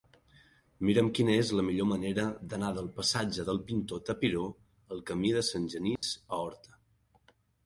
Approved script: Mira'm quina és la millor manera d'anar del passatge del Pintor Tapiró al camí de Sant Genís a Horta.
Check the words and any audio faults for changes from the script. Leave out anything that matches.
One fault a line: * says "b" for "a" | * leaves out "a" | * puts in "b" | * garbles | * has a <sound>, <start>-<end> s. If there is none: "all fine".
* has a dropout, 6.0-6.0 s